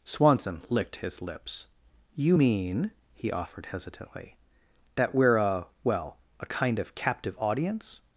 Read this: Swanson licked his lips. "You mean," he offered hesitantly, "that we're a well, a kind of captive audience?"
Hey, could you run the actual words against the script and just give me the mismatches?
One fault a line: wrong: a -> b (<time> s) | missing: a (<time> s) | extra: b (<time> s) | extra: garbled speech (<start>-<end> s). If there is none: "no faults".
no faults